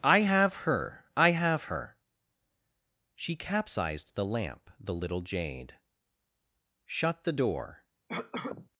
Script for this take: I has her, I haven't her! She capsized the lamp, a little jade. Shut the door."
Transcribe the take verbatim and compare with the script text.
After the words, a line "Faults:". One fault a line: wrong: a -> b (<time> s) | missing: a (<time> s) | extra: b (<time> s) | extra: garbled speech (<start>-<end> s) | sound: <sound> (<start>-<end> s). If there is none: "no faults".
I have her, I have her! She capsized the lamp, the little jade. Shut the door."
Faults:
wrong: has -> have (0.2 s)
wrong: haven't -> have (1.3 s)
wrong: a -> the (4.8 s)
sound: cough (8.1-8.7 s)